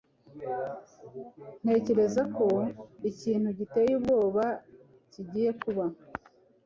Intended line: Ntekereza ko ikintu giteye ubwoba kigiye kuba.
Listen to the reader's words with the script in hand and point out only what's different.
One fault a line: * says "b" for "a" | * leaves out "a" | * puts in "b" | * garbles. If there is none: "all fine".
all fine